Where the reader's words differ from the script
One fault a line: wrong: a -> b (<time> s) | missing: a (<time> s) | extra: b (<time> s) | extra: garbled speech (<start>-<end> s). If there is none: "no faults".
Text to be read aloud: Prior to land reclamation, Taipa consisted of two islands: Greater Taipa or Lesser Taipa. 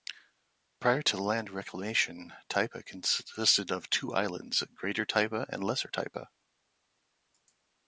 wrong: or -> and (5.5 s)